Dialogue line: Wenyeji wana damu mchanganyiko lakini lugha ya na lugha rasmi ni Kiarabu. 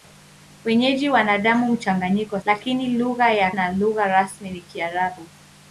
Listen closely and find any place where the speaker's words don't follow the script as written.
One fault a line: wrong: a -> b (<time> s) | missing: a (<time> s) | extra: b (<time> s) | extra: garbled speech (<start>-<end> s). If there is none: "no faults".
no faults